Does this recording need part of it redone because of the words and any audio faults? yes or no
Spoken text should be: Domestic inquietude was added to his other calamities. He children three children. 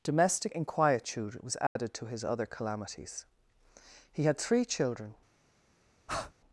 yes